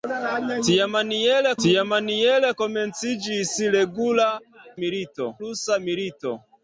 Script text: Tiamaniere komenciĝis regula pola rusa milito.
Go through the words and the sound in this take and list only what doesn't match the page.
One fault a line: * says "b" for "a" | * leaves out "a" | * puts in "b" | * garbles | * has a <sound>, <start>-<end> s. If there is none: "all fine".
* puts in "tiamaniere"
* says "milito" for "pola"